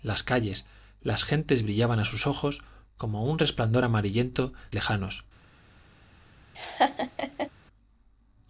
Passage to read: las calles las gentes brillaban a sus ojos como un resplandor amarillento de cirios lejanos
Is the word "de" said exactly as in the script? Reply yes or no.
no